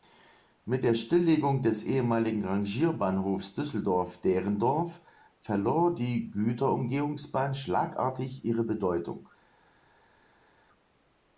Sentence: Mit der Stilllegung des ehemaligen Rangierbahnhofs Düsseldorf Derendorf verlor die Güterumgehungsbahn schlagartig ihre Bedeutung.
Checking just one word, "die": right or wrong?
right